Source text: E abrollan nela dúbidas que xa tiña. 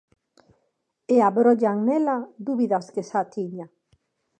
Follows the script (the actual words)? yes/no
yes